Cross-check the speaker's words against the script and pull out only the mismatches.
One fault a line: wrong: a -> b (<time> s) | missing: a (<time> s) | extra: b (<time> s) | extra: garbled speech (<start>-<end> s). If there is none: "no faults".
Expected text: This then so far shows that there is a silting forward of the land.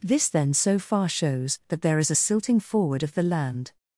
no faults